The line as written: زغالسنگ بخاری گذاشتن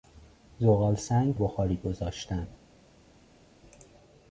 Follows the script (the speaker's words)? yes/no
yes